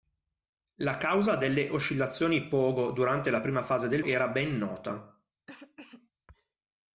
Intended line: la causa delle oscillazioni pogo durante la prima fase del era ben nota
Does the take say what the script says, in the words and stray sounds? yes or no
no